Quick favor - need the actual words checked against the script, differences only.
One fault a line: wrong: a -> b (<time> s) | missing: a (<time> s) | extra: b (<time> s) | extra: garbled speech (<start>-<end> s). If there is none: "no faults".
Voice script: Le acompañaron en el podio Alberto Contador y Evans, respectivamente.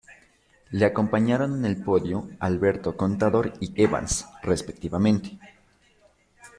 no faults